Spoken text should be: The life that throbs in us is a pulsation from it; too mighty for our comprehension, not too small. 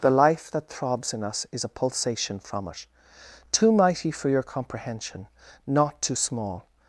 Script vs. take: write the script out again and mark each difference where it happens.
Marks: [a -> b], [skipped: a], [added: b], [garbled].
The life that throbs in us is a pulsation from it; too mighty for [our -> your] comprehension, not too small.